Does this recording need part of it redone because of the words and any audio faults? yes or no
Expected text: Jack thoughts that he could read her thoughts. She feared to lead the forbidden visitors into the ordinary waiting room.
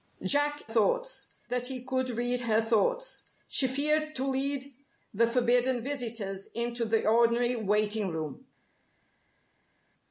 no